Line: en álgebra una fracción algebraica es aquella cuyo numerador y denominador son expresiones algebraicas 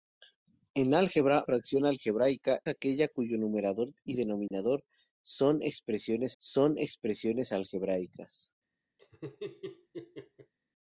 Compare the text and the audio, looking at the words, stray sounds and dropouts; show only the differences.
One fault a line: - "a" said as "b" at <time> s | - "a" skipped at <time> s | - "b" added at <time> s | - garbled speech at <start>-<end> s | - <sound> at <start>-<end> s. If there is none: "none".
- "una" skipped at 1.4 s
- "es" skipped at 2.6 s
- dropout at 4.5-4.5 s
- "son expresiones" added at 6.4 s
- laugh at 9.0-10.5 s